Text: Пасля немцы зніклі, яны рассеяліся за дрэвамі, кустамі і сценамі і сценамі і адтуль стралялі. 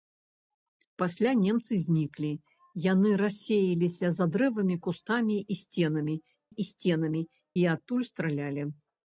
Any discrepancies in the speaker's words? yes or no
no